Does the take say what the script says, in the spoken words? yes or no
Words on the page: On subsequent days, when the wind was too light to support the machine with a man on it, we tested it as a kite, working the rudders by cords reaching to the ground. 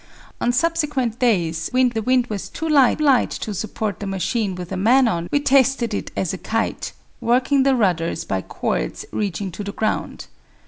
no